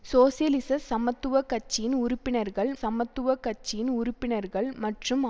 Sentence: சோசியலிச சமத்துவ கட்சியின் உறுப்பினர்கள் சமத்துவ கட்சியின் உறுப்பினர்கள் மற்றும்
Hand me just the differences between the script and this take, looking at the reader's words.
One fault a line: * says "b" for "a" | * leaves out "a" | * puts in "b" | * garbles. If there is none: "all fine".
all fine